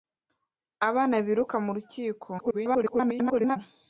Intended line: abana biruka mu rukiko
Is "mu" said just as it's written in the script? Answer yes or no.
yes